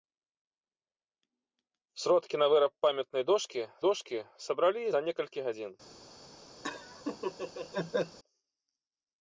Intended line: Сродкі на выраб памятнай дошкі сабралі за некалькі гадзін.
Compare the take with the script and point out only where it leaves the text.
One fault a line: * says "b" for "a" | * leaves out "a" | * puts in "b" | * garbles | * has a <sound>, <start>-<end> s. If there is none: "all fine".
* puts in "дошкі"
* has a laugh, 6.6-8.2 s